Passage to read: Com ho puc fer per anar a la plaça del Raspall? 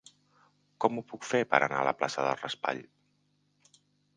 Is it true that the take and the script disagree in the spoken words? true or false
false